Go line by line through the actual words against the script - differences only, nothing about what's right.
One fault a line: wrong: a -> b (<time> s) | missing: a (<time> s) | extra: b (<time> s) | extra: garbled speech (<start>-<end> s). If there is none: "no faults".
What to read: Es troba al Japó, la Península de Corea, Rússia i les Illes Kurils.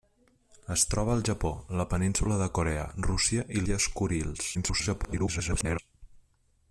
missing: les (3.7 s)
extra: garbled speech (4.5-5.8 s)